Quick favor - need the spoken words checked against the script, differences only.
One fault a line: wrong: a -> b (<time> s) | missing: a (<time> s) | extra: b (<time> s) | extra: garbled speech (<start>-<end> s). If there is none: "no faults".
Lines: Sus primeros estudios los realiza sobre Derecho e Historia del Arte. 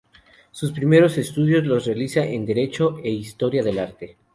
wrong: sobre -> en (2.2 s)